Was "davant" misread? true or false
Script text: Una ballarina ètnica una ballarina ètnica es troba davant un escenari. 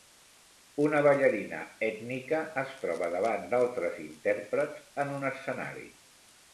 true